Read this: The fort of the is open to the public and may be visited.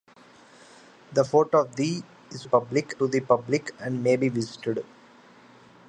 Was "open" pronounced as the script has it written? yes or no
no